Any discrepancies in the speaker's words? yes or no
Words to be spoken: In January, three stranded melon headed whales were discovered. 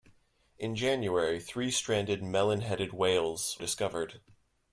yes